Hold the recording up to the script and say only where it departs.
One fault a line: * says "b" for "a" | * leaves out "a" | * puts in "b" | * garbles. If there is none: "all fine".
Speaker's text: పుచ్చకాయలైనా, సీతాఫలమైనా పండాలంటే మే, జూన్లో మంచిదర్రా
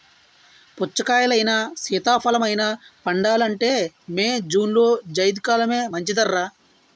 * puts in "జైద్ కాలమే"